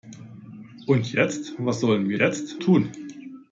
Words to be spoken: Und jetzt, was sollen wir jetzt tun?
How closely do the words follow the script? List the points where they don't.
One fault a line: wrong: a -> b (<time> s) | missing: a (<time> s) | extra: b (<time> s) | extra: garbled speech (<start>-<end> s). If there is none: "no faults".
no faults